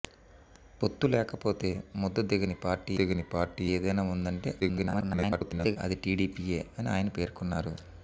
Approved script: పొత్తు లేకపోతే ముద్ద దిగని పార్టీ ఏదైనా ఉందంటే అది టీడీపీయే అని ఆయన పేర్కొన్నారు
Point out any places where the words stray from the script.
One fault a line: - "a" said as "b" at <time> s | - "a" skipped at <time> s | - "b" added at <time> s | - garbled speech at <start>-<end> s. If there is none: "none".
- "దిగని పార్టీ" added at 2.9 s
- garbled speech at 4.6-5.8 s